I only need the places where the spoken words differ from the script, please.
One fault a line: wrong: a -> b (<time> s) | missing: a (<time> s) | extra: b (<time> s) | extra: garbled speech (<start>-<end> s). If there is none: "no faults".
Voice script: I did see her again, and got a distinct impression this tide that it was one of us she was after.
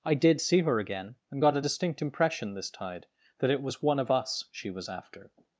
no faults